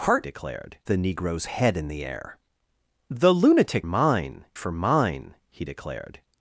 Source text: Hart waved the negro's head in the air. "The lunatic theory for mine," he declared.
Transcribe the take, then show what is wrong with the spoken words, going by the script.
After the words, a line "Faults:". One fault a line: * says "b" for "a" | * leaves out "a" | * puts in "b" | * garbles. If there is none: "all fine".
Hart declared the negro's head in the air. "The lunatic mine for mine," he declared.
Faults:
* says "declared" for "waved"
* says "mine" for "theory"